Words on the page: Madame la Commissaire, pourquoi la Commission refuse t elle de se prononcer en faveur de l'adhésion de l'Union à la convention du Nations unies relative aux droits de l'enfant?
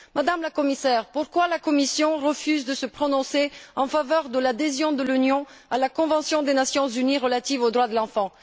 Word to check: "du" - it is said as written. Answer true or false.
false